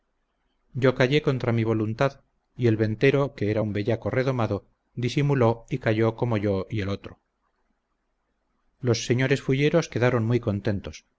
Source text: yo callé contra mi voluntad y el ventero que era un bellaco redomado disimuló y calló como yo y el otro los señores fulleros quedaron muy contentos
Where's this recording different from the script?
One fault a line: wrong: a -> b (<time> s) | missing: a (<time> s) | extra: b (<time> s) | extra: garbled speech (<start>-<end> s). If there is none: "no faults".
no faults